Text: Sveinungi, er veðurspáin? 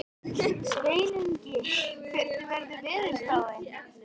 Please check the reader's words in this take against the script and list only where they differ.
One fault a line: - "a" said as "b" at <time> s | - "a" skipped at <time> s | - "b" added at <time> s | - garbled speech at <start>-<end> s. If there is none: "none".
- "hvernig" added at 2.1 s